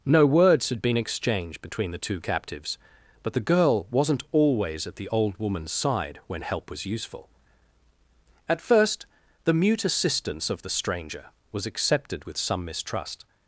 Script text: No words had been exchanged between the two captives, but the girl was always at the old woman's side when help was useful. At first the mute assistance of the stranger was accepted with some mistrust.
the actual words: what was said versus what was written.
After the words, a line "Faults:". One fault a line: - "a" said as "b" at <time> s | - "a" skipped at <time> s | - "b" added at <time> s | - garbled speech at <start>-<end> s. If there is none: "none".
No words had been exchanged between the two captives, but the girl wasn't always at the old woman's side when help was useful. At first the mute assistance of the stranger was accepted with some mistrust.
Faults:
- "was" said as "wasn't" at 3.9 s